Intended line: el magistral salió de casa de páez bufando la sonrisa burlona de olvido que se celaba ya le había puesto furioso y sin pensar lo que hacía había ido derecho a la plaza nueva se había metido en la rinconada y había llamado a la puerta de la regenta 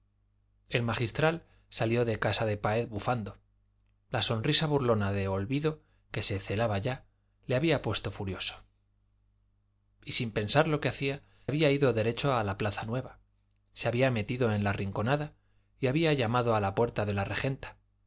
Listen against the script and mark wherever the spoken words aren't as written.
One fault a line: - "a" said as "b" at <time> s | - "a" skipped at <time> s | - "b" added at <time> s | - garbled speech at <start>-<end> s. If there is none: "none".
none